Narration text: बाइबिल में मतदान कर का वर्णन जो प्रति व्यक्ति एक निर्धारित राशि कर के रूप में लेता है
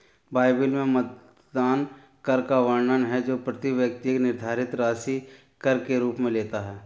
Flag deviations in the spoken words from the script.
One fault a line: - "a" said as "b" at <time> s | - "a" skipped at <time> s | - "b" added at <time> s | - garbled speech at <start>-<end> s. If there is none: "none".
- "है" added at 3.0 s